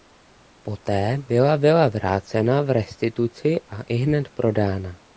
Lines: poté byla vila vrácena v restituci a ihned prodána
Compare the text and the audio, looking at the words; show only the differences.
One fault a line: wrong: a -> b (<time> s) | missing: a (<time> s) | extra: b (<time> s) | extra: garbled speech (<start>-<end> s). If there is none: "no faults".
no faults